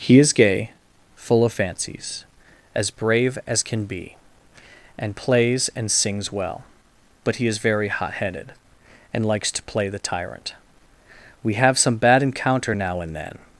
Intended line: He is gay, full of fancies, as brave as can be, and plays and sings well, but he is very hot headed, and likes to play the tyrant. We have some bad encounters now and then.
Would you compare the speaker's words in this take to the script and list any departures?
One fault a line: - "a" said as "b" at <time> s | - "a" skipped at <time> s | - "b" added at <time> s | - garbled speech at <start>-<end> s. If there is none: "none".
- "encounters" said as "encounter" at 12.2 s